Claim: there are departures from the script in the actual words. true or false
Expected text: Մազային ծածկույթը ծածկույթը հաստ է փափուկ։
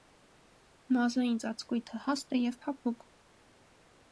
true